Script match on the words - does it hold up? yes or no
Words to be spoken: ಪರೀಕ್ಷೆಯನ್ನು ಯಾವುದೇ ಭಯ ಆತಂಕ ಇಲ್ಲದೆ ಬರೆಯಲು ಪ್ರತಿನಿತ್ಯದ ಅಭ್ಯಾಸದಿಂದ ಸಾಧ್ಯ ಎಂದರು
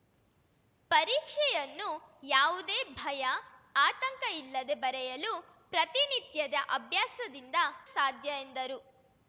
yes